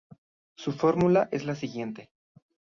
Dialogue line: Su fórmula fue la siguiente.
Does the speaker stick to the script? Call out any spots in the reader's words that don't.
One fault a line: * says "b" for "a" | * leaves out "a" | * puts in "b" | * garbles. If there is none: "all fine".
* says "es" for "fue"